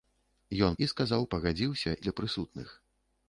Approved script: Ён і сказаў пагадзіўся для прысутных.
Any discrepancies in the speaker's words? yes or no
no